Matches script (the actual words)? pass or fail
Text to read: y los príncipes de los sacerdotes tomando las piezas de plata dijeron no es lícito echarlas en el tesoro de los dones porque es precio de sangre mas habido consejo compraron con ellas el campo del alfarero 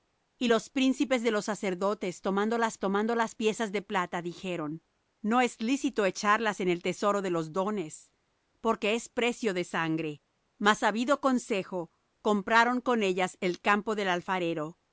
fail